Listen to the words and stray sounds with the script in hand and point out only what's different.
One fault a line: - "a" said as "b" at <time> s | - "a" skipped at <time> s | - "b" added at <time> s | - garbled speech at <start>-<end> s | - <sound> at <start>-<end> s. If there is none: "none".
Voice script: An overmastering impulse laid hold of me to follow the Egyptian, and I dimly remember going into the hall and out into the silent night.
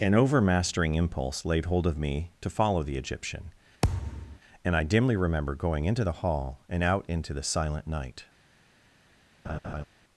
- thud at 3.8-4.4 s
- laugh at 9.4-9.8 s